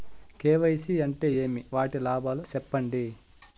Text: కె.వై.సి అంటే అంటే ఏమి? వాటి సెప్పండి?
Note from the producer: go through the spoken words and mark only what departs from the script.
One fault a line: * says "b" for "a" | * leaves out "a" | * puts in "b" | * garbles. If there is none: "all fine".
* leaves out "అంటే"
* puts in "లాభాలు"